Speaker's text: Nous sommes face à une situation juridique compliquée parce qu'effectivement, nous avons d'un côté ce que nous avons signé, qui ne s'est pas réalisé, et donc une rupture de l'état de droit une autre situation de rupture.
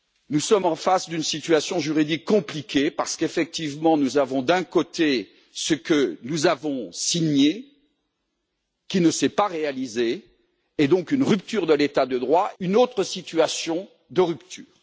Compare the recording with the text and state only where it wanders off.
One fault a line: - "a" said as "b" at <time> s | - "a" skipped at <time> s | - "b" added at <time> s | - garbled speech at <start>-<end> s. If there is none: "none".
none